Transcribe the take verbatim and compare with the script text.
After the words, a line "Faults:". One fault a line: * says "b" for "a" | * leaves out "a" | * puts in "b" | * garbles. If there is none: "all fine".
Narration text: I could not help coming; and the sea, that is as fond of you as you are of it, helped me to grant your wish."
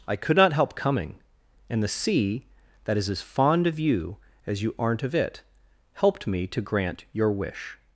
I could not help coming; and the sea, that is as fond of you as you aren't of it, helped me to grant your wish."
Faults:
* says "aren't" for "are"